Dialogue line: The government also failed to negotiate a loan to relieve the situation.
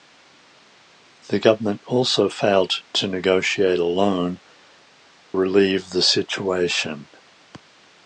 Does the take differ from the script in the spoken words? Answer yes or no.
yes